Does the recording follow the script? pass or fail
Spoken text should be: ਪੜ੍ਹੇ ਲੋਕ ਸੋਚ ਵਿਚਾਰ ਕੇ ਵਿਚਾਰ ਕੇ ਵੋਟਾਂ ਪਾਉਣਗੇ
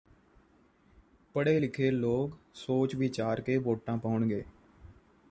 fail